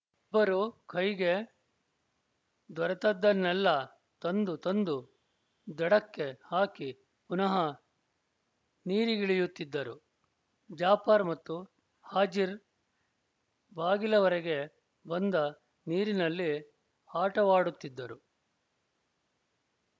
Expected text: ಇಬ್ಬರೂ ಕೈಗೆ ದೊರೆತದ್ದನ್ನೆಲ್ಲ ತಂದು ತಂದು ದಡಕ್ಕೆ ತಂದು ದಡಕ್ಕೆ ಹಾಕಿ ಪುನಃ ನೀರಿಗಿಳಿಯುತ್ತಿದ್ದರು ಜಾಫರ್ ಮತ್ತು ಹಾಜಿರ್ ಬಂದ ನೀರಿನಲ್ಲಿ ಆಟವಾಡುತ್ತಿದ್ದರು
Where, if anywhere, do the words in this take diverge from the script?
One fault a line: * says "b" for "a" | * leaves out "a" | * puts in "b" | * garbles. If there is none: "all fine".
* leaves out "ತಂದು ದಡಕ್ಕೆ"
* puts in "ಬಾಗಿಲವರೆಗೆ"